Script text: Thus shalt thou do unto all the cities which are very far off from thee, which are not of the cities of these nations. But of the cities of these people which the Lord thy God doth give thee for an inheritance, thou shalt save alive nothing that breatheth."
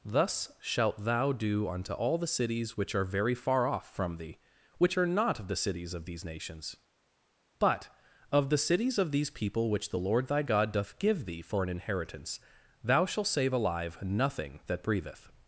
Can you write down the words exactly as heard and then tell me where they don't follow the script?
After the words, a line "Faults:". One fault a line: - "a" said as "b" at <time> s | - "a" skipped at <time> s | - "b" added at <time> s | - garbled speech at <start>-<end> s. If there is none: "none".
Thus shalt thou do unto all the cities which are very far off from thee, which are not of the cities of these nations. But of the cities of these people which the Lord thy God doth give thee for an inheritance, thou shalt save alive nothing that breatheth."
Faults:
none